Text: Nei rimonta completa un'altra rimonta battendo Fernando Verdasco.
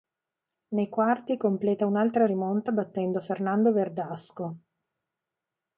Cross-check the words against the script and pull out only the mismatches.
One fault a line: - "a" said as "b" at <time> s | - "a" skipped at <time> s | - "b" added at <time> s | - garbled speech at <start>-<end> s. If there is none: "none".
- "rimonta" said as "quarti" at 0.9 s